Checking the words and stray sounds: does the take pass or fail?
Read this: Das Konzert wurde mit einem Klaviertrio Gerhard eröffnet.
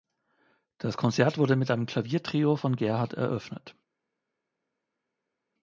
fail